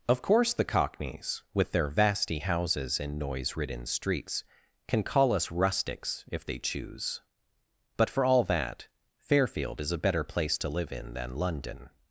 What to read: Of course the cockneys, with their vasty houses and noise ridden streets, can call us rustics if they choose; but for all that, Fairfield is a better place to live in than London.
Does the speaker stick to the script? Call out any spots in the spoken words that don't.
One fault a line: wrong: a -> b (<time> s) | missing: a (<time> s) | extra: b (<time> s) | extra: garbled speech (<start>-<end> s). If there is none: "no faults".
no faults